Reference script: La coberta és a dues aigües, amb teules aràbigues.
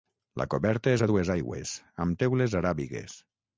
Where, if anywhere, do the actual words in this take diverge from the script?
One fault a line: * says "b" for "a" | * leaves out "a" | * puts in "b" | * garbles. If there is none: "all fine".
all fine